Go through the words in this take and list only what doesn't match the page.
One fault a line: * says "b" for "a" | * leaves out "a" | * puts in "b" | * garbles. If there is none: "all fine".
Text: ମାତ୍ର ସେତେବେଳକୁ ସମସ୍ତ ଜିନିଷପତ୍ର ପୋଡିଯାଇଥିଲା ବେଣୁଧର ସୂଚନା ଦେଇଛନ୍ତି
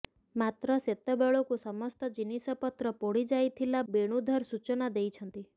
all fine